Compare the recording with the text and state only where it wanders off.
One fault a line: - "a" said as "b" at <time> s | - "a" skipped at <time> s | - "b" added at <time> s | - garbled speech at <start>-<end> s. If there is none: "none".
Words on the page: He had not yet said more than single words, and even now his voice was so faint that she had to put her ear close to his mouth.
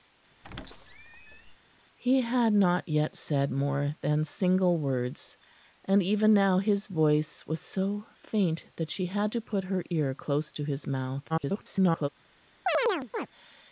- garbled speech at 11.3-12.1 s